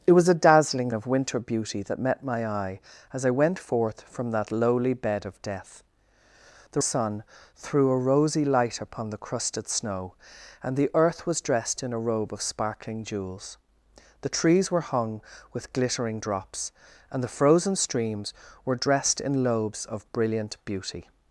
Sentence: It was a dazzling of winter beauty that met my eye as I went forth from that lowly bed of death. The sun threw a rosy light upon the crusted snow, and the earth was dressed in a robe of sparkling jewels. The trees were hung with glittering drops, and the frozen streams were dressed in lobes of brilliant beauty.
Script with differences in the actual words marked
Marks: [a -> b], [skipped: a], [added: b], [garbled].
It was a dazzling of winter beauty that met my eye as I went forth from that lowly bed of death. The sun threw a rosy light upon the crusted snow, and the earth was dressed in a robe of sparkling jewels. The trees were hung with glittering drops, and the frozen streams were dressed in lobes of brilliant beauty.